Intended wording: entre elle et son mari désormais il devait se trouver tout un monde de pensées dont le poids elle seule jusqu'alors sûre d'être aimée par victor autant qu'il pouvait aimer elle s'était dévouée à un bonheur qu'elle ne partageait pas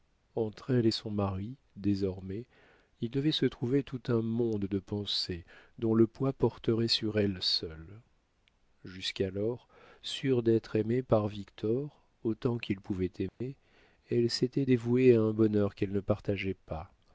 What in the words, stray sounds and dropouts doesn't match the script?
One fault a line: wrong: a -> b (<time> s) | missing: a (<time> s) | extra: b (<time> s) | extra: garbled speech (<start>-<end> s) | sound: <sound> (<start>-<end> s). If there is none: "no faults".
extra: porterait sur (6.3 s)
sound: dropout (13.3-13.4 s)